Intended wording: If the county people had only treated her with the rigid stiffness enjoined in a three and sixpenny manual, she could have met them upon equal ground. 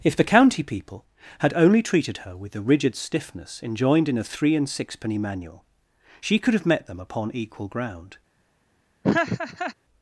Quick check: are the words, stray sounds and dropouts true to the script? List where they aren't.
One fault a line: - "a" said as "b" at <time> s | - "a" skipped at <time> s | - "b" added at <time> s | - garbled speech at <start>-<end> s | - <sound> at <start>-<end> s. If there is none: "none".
- laugh at 9.0-9.7 s